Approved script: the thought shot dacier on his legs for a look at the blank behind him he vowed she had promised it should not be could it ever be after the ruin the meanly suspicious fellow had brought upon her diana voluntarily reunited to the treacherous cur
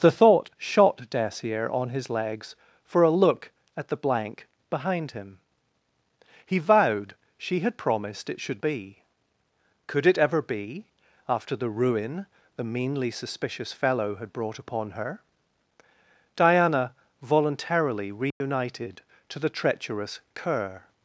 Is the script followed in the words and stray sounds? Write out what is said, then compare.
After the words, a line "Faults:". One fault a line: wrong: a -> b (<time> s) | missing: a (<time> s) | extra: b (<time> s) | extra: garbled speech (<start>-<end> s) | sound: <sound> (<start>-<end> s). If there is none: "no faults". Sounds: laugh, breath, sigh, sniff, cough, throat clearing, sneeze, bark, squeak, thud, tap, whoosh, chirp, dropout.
the thought shot dacier on his legs for a look at the blank behind him he vowed she had promised it should be could it ever be after the ruin the meanly suspicious fellow had brought upon her diana voluntarily reunited to the treacherous cur
Faults:
missing: not (8.6 s)
sound: dropout (18.3-18.4 s)